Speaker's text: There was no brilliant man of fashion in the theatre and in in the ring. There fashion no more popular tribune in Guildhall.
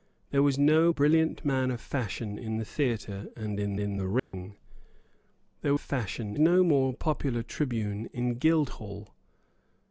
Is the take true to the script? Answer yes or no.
yes